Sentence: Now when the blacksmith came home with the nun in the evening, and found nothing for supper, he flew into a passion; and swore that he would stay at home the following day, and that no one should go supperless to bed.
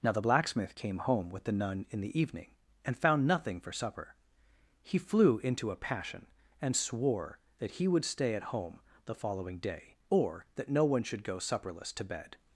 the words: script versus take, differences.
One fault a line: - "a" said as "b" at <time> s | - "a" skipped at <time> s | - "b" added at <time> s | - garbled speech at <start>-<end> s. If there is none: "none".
- "when" skipped at 0.1 s
- "and" said as "or" at 10.1 s